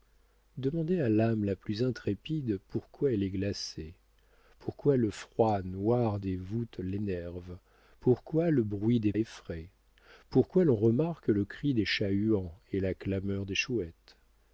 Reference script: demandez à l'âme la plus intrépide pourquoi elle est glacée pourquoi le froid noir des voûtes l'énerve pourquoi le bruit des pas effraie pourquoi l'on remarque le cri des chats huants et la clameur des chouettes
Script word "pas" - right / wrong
wrong